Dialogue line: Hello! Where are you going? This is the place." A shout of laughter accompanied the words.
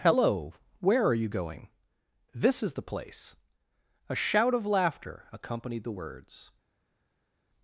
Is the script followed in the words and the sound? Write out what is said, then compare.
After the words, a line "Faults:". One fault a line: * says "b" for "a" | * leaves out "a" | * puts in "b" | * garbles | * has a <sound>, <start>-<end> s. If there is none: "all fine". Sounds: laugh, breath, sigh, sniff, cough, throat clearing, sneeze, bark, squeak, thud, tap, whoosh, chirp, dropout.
Hello! Where are you going? This is the place." A shout of laughter accompanied the words.
Faults:
all fine